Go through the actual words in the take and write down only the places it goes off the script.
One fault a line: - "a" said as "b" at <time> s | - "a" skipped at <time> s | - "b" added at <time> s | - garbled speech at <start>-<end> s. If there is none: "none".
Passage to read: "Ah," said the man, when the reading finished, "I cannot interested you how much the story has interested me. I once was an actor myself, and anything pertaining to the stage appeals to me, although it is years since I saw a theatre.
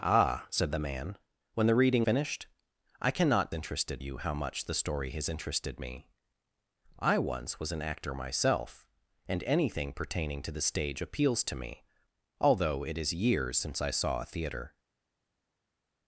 none